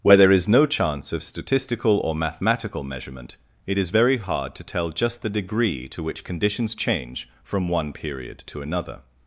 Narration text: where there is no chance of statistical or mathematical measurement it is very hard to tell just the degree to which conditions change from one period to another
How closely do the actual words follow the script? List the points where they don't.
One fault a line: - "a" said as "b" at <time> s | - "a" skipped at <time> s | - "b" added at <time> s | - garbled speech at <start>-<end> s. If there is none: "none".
none